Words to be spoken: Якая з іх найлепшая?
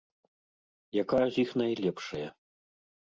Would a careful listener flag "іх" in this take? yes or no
no